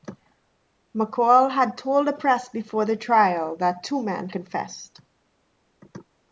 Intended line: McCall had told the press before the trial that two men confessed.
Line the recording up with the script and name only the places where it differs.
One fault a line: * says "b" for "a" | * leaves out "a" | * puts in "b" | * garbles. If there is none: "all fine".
all fine